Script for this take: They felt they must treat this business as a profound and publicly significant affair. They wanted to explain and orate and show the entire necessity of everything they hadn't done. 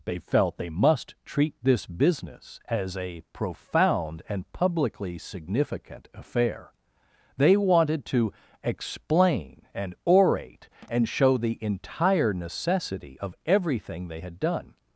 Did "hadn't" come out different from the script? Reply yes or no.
yes